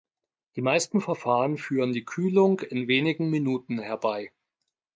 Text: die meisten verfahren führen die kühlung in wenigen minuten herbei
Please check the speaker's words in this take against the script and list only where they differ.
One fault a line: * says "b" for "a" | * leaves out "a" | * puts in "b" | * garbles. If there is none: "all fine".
all fine